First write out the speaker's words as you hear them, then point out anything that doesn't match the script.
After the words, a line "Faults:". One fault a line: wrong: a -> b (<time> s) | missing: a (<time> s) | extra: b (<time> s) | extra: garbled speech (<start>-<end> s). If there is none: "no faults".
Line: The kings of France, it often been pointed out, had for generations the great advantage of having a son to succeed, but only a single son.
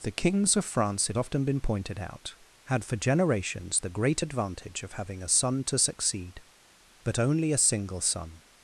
The kings of France, it often been pointed out, had for generations the great advantage of having a son to succeed, but only a single son.
Faults:
no faults